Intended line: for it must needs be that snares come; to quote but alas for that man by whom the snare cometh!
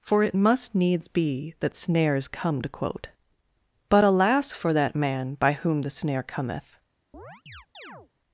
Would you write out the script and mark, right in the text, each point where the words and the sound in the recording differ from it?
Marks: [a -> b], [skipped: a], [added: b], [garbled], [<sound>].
for it must needs be that snares come; to quote but alas for that man by whom the snare cometh! [chirp]